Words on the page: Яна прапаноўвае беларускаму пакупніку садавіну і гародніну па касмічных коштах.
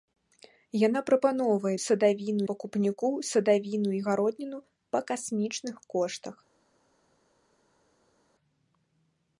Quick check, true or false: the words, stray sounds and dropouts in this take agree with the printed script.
false